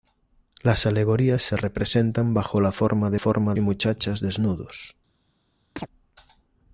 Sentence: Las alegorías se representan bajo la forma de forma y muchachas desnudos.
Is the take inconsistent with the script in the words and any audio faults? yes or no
yes